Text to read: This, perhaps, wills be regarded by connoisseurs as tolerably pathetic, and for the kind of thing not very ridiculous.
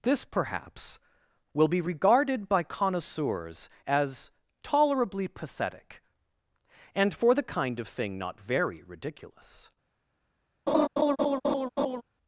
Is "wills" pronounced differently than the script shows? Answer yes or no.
yes